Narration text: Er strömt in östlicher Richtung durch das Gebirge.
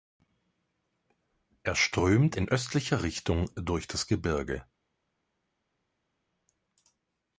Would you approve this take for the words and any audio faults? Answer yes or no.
yes